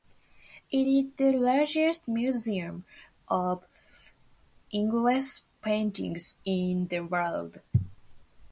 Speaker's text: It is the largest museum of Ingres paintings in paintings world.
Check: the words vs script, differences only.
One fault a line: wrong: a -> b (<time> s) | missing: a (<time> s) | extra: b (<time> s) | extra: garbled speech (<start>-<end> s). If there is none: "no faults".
wrong: paintings -> the (6.9 s)